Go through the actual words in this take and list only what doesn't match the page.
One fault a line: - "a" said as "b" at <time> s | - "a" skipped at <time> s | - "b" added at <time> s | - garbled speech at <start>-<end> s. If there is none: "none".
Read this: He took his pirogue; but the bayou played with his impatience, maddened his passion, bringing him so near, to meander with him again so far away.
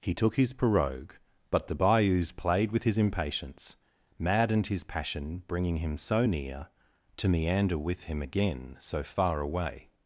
- "bayou" said as "bayous" at 1.7 s